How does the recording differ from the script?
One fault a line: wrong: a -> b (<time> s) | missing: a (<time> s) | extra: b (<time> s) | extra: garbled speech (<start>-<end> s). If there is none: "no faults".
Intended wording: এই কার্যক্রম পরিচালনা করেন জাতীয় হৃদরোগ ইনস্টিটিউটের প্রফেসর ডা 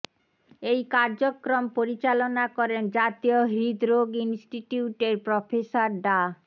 no faults